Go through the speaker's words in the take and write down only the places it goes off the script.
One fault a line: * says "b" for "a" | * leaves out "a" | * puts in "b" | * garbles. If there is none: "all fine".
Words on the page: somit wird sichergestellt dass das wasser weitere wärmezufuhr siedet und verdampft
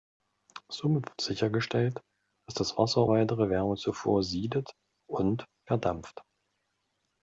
all fine